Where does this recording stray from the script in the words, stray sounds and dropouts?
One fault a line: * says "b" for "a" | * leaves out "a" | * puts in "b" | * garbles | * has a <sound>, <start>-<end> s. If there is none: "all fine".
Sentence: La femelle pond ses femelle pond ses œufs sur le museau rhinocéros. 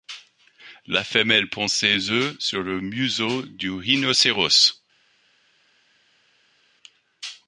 * leaves out "femelle pond ses"
* puts in "du"